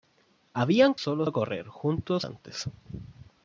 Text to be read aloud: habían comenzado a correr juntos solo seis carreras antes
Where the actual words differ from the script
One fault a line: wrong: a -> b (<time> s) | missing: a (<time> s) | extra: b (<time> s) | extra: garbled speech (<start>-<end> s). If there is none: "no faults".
wrong: comenzado -> solo (1.0 s)
missing: solo seis carreras (2.2 s)